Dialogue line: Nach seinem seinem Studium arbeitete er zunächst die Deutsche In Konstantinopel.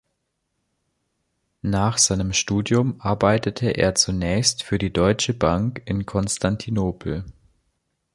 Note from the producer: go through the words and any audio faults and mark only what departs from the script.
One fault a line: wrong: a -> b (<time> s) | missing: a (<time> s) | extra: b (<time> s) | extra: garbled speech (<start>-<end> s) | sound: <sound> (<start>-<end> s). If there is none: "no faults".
missing: seinem (2.3 s)
extra: für (4.6 s)
extra: Bank (5.3 s)